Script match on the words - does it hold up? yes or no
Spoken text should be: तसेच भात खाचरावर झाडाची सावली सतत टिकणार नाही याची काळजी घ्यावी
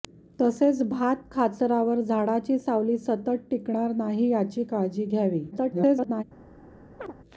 no